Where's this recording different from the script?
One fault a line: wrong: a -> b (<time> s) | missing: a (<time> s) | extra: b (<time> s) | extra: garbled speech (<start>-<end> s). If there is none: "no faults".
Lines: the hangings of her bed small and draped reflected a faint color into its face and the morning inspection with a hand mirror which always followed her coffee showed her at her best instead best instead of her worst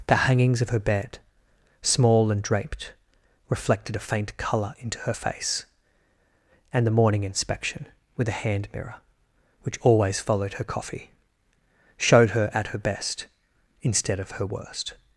wrong: its -> her (5.0 s)
missing: best instead (14.2 s)